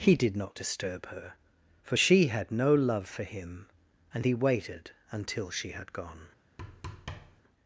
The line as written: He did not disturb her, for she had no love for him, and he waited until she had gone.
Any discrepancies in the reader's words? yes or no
no